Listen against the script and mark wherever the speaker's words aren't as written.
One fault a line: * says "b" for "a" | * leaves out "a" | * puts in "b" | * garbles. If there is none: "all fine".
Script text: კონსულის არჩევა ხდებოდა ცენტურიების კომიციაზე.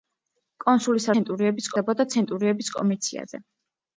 * says "ცენტურიების" for "არჩევა"